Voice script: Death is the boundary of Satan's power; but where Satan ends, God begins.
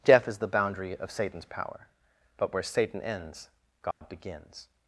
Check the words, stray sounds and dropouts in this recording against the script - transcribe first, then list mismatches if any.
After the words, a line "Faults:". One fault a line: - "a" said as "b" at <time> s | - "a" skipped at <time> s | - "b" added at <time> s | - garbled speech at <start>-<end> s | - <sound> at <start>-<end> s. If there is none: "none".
Death is the boundary of Satan's power; but where Satan ends, God begins.
Faults:
- dropout at 3.9-4.0 s